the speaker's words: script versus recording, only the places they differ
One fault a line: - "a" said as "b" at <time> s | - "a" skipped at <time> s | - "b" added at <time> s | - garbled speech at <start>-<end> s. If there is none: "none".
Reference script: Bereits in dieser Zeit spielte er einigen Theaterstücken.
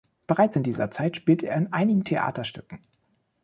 - "in" added at 1.6 s